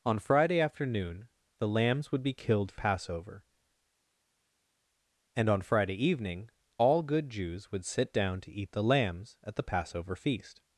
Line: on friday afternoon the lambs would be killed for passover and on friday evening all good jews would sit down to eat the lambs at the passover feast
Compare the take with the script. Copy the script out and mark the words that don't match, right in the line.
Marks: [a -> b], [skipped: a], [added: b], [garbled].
on friday afternoon the lambs would be killed for passover and on friday evening all good jews would sit down to eat the lambs at the passover feast